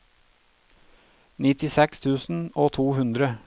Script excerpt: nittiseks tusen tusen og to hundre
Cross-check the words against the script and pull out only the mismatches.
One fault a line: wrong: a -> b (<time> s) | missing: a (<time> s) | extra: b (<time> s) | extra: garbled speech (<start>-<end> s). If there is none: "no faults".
missing: tusen (2.4 s)